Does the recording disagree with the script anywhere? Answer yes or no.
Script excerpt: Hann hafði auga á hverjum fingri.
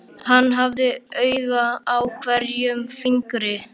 no